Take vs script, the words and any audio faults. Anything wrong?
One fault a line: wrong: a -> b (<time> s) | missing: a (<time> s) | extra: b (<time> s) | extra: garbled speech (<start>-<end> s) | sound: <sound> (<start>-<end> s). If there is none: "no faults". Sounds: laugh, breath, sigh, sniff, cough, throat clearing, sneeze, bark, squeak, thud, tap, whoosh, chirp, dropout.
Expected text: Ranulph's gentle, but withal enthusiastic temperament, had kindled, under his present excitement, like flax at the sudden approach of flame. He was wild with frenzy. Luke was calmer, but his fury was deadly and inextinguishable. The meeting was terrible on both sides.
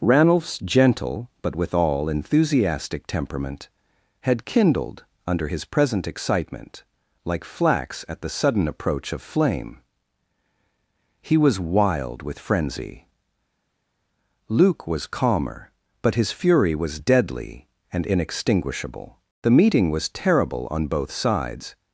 no faults